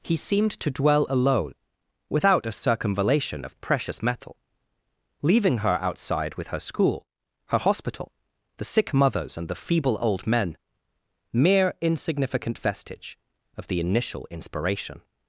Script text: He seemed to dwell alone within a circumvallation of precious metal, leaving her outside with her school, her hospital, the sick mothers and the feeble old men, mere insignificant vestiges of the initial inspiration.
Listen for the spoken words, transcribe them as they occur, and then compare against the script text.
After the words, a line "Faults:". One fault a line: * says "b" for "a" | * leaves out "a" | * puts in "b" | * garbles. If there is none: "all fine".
He seemed to dwell alone without a circumvallation of precious metal, leaving her outside with her school, her hospital, the sick mothers and the feeble old men, mere insignificant vestige of the initial inspiration.
Faults:
* says "without" for "within"
* says "vestige" for "vestiges"